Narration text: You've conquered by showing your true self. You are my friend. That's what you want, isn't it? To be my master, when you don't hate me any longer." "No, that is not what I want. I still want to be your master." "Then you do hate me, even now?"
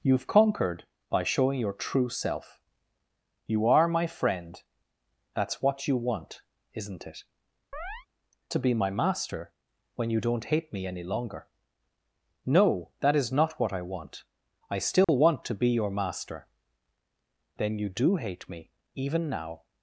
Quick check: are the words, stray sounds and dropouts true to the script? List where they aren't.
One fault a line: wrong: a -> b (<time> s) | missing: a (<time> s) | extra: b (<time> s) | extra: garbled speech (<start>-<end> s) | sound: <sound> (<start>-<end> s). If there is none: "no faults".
sound: chirp (7.7-8.1 s)
sound: dropout (15.0-15.1 s)